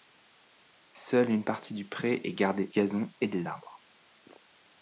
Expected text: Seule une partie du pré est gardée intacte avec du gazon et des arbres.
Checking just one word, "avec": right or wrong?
wrong